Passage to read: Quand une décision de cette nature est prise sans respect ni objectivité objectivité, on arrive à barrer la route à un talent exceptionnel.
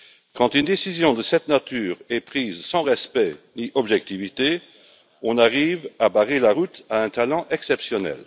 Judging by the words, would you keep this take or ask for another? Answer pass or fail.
fail